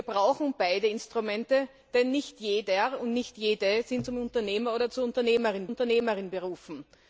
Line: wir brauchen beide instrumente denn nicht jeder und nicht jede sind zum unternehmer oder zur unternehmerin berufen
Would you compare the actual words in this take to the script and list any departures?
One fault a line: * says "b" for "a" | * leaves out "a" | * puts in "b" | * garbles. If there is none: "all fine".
* puts in "unternehmerin"